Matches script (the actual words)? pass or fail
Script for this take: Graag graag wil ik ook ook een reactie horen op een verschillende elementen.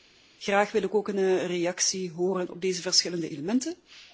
fail